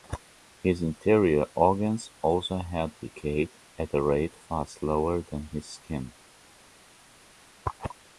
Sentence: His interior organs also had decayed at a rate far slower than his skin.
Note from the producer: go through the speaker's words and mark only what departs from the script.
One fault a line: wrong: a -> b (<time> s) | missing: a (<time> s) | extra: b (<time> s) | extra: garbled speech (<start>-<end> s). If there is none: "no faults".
no faults